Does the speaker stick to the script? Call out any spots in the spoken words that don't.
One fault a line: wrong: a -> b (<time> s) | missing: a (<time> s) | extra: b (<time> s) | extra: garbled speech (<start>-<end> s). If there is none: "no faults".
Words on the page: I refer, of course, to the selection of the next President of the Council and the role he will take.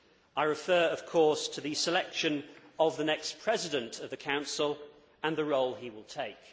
no faults